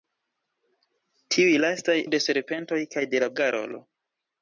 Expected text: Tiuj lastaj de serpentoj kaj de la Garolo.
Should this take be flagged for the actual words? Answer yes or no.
no